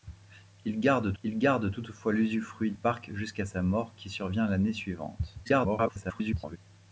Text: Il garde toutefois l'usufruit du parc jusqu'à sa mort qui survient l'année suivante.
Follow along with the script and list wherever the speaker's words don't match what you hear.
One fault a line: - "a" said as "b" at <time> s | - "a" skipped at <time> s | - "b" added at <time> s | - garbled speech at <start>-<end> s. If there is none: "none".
- "il garde" added at 1.2 s
- "du" skipped at 2.7 s
- garbled speech at 5.4-6.6 s